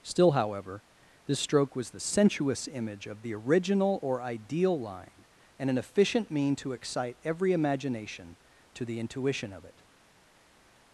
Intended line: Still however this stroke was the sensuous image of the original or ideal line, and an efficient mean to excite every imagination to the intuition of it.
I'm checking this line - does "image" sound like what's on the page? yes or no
yes